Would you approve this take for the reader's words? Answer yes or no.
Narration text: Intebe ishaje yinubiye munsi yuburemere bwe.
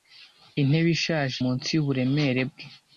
no